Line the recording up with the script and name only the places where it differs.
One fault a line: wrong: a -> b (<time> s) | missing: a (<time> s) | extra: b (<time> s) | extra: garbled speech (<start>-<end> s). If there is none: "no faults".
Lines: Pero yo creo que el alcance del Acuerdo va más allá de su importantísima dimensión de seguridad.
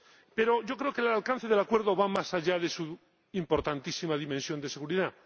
no faults